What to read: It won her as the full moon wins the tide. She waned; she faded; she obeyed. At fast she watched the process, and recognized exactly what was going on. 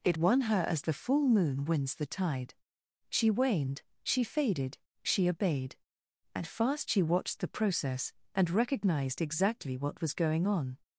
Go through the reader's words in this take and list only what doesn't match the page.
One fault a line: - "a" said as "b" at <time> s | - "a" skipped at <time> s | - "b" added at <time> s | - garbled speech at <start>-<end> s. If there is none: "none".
none